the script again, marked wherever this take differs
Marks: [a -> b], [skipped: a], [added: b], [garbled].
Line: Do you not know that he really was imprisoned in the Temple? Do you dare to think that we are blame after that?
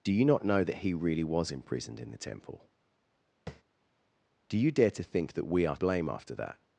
Do you not know that he really was imprisoned in the Temple? Do you dare to think that we are blame after that?